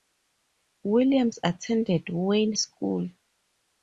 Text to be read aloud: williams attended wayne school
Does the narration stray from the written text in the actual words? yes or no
no